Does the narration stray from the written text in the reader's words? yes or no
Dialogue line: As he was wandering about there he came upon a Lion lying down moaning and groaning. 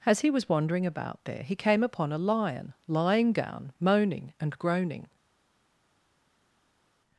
no